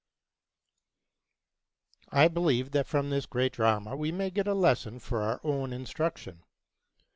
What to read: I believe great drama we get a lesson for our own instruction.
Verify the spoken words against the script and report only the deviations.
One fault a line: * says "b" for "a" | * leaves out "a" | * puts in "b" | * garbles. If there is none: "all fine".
* puts in "that from this"
* puts in "may"